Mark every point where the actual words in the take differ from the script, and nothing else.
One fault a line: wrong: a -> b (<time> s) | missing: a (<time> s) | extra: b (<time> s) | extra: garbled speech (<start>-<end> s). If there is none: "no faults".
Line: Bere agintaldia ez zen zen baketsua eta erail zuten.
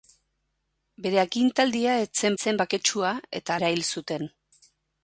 no faults